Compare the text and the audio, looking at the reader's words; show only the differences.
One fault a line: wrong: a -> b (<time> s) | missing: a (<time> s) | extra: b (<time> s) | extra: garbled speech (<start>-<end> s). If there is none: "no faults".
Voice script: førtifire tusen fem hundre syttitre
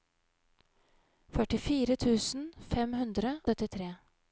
no faults